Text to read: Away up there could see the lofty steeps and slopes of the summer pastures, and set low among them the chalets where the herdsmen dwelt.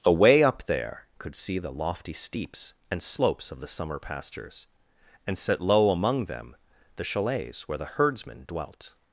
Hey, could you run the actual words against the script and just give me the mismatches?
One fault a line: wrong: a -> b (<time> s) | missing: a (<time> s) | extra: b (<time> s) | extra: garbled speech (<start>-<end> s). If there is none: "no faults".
no faults